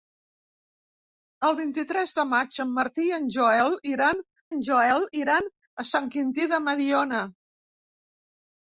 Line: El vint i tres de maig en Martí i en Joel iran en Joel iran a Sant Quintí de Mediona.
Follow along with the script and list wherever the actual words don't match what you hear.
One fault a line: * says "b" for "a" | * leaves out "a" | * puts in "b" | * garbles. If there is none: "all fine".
all fine